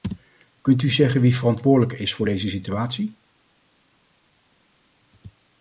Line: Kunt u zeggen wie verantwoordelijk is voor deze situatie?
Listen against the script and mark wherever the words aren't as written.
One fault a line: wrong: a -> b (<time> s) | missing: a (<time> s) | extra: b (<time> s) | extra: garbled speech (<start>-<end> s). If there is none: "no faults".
no faults